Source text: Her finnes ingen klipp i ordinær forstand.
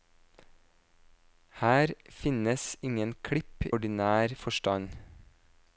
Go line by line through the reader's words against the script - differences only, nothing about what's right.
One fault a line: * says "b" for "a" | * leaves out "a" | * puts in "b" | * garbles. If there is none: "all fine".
* leaves out "i"